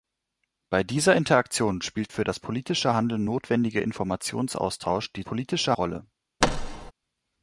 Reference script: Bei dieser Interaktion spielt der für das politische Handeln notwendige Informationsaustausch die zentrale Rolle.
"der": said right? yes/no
no